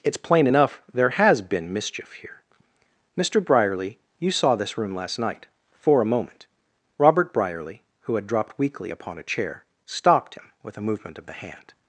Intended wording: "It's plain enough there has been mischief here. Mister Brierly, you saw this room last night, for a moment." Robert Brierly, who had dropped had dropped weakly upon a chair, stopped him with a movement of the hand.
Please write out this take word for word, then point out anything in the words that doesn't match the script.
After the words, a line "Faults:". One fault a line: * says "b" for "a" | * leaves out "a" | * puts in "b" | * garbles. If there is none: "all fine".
"It's plain enough there has been mischief here. Mister Brierly, you saw this room last night, for a moment." Robert Brierly, who had dropped weakly upon a chair, stopped him with a movement of the hand.
Faults:
* leaves out "had dropped"